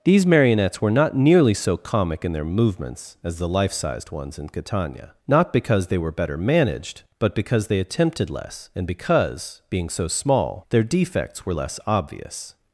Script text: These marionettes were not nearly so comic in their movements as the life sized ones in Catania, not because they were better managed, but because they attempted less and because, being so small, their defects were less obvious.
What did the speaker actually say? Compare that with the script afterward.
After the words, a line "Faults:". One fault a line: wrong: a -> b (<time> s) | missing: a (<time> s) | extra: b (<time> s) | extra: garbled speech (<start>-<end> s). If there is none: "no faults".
These marionettes were not nearly so comic in their movements as the life sized ones in Catania, not because they were better managed, but because they attempted less and because, being so small, their defects were less obvious.
Faults:
no faults